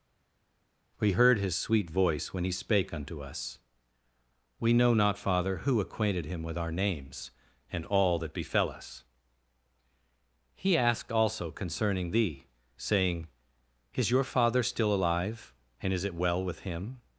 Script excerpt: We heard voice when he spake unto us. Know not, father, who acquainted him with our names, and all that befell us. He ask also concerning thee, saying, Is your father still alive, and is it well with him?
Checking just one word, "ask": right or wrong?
wrong